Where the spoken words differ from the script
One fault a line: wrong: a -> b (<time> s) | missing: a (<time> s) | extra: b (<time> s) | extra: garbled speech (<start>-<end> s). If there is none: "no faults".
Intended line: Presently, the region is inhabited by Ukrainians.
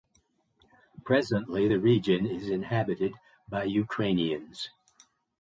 no faults